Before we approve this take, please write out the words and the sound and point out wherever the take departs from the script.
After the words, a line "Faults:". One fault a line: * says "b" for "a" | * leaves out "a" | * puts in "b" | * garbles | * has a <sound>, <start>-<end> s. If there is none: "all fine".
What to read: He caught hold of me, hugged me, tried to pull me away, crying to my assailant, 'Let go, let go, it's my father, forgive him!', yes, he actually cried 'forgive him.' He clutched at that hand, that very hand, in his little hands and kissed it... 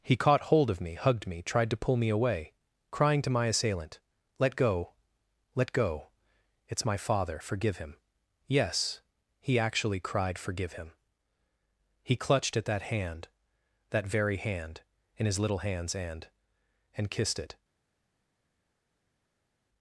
He caught hold of me, hugged me, tried to pull me away, crying to my assailant, 'Let go, let go, it's my father, forgive him!', yes, he actually cried 'forgive him.' He clutched at that hand, that very hand, in his little hands and and kissed it...
Faults:
* puts in "and"